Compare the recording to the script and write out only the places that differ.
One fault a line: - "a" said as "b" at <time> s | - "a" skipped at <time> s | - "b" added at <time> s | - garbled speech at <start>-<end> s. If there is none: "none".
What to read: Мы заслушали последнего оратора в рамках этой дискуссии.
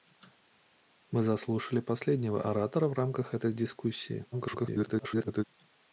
- garbled speech at 4.3-5.4 s